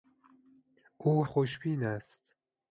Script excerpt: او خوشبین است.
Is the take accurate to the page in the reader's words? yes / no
yes